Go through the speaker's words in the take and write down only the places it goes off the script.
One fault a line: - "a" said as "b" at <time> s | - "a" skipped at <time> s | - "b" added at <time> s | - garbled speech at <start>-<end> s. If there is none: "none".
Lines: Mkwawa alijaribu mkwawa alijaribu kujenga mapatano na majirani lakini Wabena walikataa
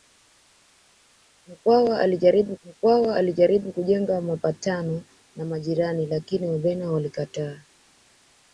none